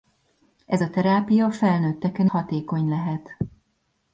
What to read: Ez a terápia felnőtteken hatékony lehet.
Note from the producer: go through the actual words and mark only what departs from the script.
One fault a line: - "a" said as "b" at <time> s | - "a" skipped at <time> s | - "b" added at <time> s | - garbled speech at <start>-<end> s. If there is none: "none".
none